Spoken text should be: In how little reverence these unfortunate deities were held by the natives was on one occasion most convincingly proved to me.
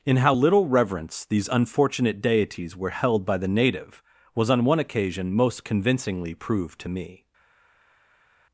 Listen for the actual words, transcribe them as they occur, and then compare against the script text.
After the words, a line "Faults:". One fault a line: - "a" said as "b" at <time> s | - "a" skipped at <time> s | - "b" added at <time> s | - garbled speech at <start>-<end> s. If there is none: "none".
In how little reverence these unfortunate deities were held by the native was on one occasion most convincingly proved to me.
Faults:
- "natives" said as "native" at 3.5 s